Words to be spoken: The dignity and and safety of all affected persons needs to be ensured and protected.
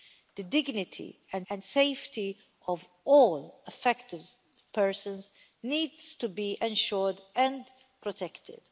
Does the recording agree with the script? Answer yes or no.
yes